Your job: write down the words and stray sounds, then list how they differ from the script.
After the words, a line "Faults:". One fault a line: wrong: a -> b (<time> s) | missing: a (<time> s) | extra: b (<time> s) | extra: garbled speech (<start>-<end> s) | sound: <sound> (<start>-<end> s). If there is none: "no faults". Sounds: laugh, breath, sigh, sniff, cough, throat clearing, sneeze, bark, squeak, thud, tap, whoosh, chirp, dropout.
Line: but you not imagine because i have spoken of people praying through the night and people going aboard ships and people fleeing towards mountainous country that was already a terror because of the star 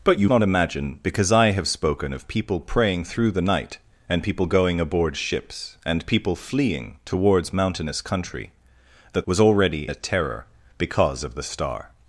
but you not imagine because i have spoken of people praying through the night and people going aboard ships and people fleeing towards mountainous country that was already a terror because of the star
Faults:
no faults